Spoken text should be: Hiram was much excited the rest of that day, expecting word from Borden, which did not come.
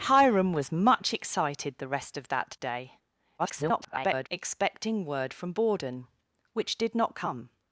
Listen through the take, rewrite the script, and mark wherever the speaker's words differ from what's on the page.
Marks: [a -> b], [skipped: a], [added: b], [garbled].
Hiram was much excited the rest of that day, [garbled] expecting word from Borden, which did not come.